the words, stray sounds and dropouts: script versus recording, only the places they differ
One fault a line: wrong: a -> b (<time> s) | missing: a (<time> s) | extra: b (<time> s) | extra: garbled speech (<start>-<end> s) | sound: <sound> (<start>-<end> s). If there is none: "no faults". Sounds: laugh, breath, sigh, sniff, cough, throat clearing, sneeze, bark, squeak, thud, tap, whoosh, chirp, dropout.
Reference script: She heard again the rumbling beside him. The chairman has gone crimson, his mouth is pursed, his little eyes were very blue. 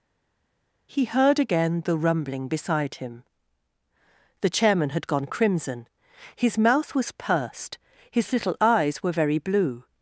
wrong: She -> He (0.9 s)
wrong: has -> had (4.9 s)
wrong: is -> was (6.9 s)